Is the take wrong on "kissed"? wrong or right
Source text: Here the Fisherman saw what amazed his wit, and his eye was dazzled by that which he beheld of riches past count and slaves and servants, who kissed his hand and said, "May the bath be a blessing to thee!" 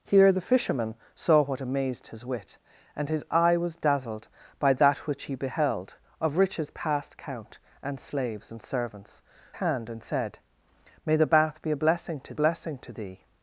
wrong